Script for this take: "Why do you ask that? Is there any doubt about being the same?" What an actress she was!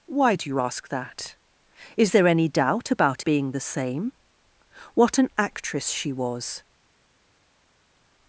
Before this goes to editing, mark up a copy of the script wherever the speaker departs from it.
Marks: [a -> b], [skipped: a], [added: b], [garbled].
"Why do you ask that? Is there any doubt about being the same?" What an actress she was!